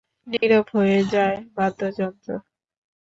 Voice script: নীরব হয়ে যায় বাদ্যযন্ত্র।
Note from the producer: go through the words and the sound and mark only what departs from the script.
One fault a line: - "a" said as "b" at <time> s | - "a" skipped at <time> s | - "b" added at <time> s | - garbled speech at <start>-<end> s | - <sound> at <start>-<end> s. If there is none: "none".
- dropout at 0.4-0.4 s